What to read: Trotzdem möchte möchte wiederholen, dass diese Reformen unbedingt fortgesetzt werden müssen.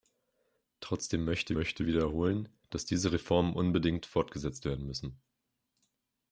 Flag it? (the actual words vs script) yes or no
no